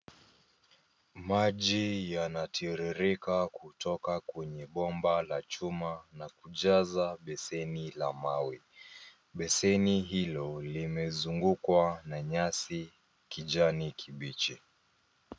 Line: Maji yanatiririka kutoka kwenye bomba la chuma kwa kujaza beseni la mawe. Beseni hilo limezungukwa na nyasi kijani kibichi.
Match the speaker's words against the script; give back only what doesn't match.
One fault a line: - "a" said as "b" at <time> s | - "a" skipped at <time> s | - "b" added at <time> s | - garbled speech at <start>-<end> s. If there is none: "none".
- "kwa" said as "na" at 6.1 s